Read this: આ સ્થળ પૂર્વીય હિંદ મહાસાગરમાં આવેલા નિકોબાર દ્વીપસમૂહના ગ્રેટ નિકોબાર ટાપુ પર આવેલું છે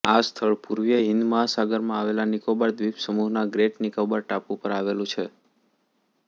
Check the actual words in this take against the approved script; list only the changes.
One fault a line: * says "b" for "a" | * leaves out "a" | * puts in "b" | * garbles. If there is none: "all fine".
all fine